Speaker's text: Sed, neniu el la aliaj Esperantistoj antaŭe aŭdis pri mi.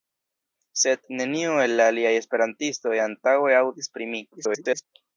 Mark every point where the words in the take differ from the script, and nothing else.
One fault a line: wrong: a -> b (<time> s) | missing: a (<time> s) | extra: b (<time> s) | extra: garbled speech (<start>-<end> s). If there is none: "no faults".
extra: garbled speech (4.3-4.8 s)